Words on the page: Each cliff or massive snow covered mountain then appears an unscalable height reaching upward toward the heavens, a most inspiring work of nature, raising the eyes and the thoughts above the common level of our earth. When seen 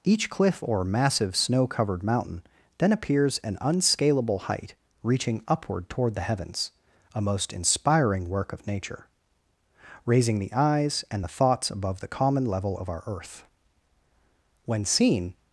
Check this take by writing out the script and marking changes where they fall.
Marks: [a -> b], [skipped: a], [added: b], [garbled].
Each cliff or massive snow covered mountain then appears an unscalable height reaching upward toward the heavens, a most inspiring work of nature, raising the eyes and the thoughts above the common level of our earth. When seen